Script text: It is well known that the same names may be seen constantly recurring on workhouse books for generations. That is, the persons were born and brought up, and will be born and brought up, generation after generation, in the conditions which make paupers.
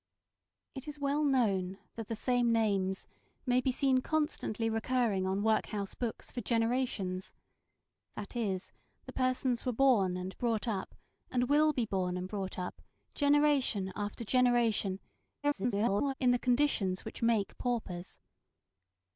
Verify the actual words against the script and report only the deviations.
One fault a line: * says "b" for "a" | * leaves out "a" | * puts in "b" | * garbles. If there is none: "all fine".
* garbles